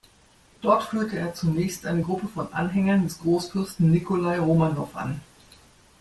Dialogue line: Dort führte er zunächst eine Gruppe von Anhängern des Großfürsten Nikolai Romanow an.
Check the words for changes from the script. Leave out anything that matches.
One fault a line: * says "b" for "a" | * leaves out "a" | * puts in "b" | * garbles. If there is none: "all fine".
all fine